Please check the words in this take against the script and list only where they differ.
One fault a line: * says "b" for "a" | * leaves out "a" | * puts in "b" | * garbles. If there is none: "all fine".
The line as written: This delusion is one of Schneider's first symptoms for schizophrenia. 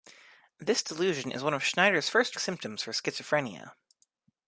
all fine